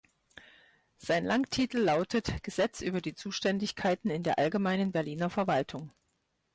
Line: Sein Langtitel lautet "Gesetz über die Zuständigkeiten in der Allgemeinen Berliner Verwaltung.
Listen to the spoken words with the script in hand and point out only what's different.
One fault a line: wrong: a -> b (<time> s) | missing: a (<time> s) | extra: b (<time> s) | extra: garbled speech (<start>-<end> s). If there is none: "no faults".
no faults